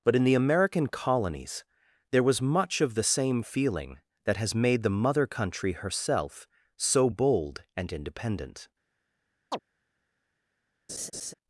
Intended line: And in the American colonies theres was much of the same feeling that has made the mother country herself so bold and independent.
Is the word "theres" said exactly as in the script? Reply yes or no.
no